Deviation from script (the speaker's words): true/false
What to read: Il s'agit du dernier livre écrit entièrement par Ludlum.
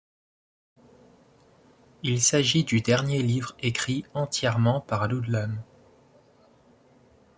false